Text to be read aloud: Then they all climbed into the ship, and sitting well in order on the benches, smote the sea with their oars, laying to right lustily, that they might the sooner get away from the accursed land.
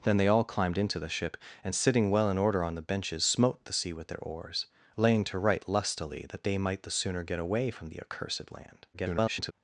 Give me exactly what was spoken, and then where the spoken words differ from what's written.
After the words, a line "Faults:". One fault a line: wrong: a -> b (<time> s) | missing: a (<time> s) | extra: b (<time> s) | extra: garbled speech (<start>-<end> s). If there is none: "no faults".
Then they all climbed into the ship, and sitting well in order on the benches, smote the sea with their oars, laying to right lustily, that they might the sooner get away from the accursed land. [garbled]
Faults:
extra: garbled speech (8.9-9.5 s)